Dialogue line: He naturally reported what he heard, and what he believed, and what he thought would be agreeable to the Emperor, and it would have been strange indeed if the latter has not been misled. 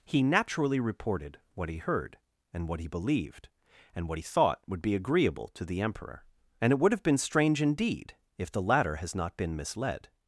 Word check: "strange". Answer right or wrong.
right